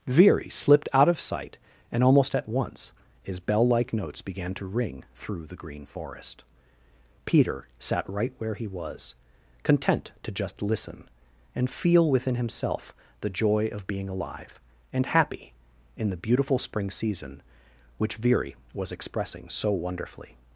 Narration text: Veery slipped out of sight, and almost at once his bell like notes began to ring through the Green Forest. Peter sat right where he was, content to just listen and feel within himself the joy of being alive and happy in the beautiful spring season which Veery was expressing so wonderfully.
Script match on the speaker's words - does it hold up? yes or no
yes